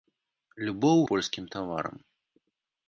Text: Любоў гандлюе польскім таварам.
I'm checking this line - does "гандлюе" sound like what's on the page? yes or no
no